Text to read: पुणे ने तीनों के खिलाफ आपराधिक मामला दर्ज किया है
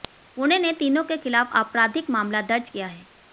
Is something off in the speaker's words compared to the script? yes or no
no